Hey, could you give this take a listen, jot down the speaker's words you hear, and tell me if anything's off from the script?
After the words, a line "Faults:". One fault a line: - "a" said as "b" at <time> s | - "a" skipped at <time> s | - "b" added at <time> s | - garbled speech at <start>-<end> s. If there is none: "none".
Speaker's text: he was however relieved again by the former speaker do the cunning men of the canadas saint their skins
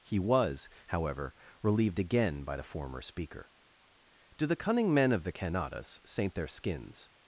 he was however relieved again by the former speaker do the cunning men of the canadas saint their skins
Faults:
none